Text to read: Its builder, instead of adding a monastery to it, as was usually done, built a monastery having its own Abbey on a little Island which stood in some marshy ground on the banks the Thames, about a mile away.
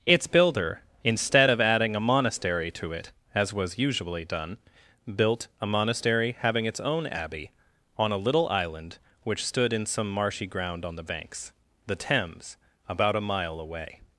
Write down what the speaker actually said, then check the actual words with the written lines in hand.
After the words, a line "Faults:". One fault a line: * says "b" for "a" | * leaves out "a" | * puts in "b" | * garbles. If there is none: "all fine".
Its builder, instead of adding a monastery to it, as was usually done, built a monastery having its own Abbey on a little Island which stood in some marshy ground on the banks the Thames, about a mile away.
Faults:
all fine